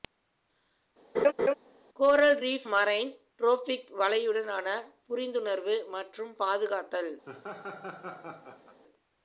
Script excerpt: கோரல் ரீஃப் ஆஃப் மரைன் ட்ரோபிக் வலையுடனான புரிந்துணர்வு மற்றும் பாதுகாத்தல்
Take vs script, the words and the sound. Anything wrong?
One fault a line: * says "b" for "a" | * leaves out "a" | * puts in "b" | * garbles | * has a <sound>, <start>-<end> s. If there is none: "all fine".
* has a laugh, 1.1-1.5 s
* leaves out "ஆஃப்"
* has a laugh, 7.2-8.8 s